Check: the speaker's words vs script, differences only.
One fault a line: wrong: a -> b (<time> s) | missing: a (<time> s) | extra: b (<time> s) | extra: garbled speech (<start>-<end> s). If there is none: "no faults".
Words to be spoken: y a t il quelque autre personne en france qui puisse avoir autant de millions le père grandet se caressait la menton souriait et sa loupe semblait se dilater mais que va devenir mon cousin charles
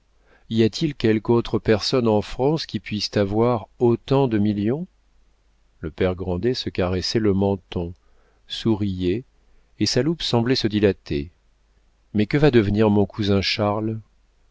wrong: la -> le (7.2 s)